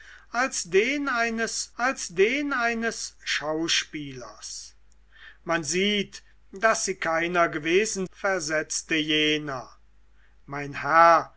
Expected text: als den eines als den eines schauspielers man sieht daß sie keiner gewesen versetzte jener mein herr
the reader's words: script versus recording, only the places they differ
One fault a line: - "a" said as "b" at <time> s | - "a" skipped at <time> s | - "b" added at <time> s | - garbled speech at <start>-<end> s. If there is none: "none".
none